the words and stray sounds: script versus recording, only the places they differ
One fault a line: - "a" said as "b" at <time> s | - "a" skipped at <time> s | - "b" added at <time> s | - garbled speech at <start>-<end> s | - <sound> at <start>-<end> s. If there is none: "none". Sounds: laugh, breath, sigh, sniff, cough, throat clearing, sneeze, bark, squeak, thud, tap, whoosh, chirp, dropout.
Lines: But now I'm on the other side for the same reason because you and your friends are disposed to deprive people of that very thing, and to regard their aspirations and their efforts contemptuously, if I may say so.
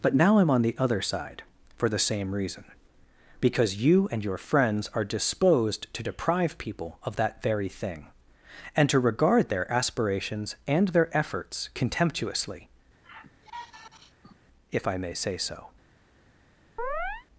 - sigh at 13.0-14.4 s
- chirp at 16.8-17.3 s